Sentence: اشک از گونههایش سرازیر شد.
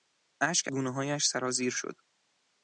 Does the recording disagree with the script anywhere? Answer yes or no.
yes